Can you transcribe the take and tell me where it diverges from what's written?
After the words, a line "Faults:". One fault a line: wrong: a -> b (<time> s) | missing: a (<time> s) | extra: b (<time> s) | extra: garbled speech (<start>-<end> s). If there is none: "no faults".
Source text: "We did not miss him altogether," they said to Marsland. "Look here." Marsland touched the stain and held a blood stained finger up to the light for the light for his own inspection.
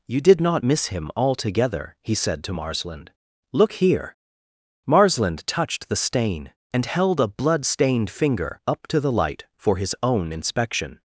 "You did not miss him altogether," he said to Marsland. "Look here." Marsland touched the stain and held a blood stained finger up to the light for his own inspection.
Faults:
wrong: We -> You (0.1 s)
wrong: they -> he (2.0 s)
missing: the light for (9.8 s)